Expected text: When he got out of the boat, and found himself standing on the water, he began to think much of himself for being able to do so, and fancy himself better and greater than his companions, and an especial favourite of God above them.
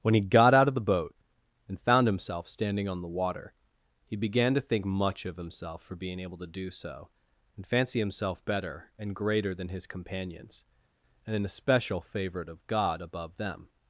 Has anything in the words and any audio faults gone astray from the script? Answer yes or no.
no